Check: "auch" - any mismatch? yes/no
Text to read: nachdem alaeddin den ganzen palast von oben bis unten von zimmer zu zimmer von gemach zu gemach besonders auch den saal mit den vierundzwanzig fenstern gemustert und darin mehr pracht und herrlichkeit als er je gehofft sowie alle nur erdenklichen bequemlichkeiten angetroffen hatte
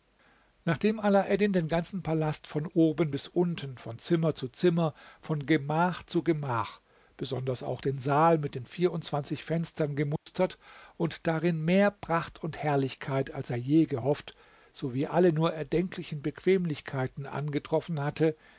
no